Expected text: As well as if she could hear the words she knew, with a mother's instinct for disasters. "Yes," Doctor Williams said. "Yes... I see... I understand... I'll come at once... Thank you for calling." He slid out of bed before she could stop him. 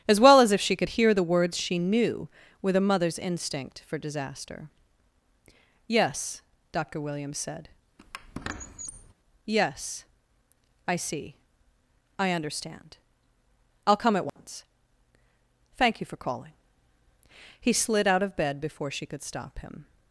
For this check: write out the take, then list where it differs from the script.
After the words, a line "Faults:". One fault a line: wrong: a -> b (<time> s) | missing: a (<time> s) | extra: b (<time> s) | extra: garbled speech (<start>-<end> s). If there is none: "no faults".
As well as if she could hear the words she knew, with a mother's instinct for disaster. "Yes," Doctor Williams said. "Yes... I see... I understand... I'll come at once... Thank you for calling." He slid out of bed before she could stop him.
Faults:
wrong: disasters -> disaster (4.0 s)